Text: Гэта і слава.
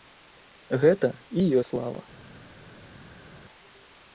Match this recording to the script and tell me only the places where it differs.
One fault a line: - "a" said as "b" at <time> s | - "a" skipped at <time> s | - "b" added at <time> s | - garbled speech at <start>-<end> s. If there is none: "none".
none